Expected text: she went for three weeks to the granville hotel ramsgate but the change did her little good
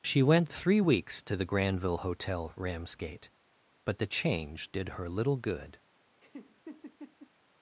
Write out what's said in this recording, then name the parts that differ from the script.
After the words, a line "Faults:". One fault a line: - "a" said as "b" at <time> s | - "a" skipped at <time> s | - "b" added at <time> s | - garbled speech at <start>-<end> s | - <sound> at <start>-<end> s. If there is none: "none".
she went three weeks to the granville hotel ramsgate but the change did her little good
Faults:
- "for" skipped at 0.5 s
- laugh at 6.2-7.3 s